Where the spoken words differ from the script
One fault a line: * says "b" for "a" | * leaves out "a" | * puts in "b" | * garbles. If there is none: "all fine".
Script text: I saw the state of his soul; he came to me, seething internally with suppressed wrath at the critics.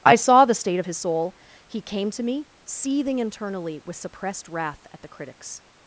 all fine